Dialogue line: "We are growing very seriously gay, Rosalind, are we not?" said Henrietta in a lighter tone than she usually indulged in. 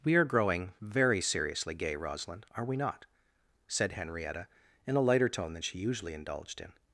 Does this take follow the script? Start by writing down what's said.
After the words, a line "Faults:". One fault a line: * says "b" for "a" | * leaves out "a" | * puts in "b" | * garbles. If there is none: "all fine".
"We are growing very seriously gay, Rosalind, are we not?" said Henrietta in a lighter tone than she usually indulged in.
Faults:
all fine